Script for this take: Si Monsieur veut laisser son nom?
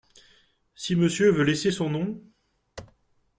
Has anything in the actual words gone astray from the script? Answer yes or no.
no